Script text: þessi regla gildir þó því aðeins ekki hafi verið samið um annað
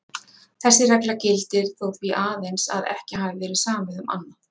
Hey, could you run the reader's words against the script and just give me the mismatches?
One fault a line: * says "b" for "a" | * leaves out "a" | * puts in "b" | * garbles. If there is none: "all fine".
* puts in "að"